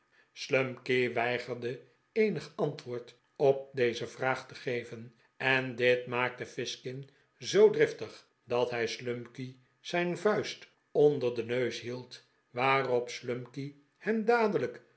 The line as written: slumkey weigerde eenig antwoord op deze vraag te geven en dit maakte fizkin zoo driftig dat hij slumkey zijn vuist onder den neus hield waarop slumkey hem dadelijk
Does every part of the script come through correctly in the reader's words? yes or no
yes